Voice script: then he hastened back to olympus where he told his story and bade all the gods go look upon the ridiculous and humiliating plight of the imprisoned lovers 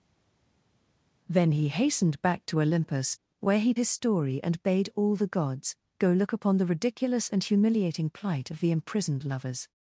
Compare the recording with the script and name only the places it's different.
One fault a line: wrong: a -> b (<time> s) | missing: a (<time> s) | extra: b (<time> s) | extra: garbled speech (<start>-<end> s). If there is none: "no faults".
missing: told (3.7 s)